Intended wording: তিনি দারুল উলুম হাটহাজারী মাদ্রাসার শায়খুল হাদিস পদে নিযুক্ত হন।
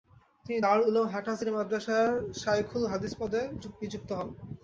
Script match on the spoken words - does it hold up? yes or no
yes